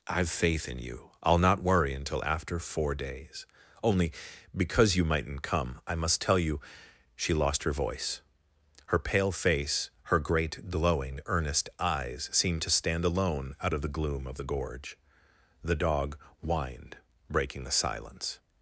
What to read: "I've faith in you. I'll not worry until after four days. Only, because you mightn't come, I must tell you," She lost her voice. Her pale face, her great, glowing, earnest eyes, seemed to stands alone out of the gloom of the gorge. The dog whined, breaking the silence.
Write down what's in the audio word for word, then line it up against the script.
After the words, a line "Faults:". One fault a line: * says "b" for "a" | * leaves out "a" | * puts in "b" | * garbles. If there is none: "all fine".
"I've faith in you. I'll not worry until after four days. Only, because you mightn't come, I must tell you," She lost her voice. Her pale face, her great, glowing, earnest eyes, seemed to stand alone out of the gloom of the gorge. The dog whined, breaking the silence.
Faults:
* says "stand" for "stands"